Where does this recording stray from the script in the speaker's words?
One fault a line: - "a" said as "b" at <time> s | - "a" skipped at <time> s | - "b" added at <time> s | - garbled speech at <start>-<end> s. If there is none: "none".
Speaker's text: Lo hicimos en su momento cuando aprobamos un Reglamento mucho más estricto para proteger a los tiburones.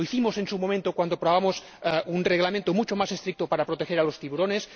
none